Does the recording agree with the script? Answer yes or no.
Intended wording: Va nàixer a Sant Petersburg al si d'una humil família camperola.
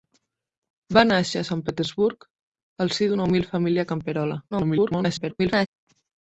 no